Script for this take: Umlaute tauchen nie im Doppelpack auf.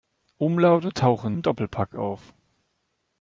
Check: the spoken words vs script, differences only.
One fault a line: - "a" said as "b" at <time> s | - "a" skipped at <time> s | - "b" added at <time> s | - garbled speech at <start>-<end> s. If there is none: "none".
- "nie" skipped at 1.4 s